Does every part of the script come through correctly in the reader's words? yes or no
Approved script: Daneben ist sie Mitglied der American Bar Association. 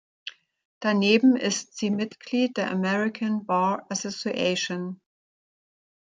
yes